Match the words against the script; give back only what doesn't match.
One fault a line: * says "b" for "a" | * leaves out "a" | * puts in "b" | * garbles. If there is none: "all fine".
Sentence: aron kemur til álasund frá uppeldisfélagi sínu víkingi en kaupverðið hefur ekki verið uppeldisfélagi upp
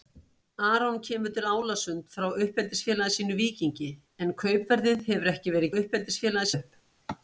all fine